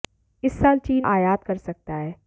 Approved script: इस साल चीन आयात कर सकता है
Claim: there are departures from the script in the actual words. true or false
false